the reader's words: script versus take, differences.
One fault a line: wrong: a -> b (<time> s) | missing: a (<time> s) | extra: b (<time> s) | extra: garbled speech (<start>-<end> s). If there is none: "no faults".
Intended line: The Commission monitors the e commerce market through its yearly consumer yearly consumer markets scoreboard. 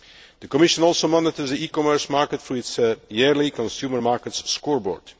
extra: also (0.8 s)
missing: yearly consumer (4.0 s)